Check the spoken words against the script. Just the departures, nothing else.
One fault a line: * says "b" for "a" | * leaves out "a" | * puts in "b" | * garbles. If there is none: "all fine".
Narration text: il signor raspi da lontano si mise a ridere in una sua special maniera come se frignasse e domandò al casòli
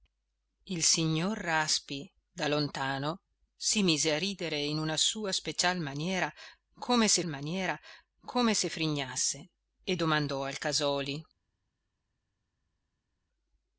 * puts in "maniera come se"